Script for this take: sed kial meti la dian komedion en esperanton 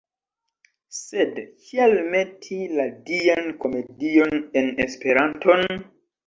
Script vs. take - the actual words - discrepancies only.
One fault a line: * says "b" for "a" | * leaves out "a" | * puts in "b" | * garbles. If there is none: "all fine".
all fine